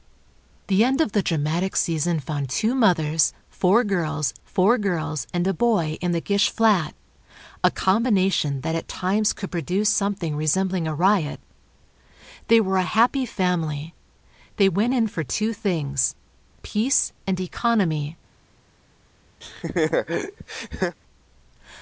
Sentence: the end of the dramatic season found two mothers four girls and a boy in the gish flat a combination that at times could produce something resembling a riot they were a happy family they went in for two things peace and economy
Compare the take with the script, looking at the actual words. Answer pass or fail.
fail